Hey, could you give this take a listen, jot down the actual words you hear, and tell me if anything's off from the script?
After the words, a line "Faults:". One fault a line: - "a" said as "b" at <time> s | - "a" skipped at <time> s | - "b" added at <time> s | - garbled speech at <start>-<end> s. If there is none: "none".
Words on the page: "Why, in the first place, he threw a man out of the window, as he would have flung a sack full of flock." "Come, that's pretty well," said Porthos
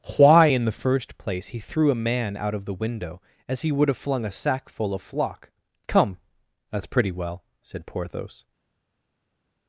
"Why, in the first place, he threw a man out of the window, as he would have flung a sack full of flock." "Come, that's pretty well," said Porthos
Faults:
none